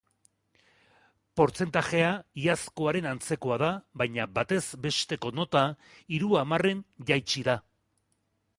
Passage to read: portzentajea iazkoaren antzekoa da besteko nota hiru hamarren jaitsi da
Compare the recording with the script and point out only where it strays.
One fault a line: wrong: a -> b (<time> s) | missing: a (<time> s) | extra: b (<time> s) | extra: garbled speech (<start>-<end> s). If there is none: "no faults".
extra: baina batez (4.0 s)